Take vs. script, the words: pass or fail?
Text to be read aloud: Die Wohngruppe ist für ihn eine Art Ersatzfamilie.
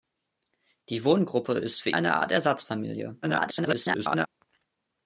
fail